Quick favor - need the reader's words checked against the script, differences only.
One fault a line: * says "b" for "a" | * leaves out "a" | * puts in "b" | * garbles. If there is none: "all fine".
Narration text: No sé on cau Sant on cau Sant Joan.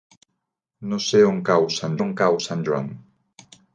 all fine